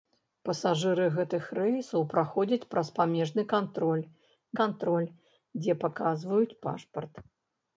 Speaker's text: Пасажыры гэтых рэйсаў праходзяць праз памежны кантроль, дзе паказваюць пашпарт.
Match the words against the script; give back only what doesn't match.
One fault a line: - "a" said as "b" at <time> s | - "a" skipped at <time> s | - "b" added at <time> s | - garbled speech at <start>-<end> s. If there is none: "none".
- "кантроль" added at 4.6 s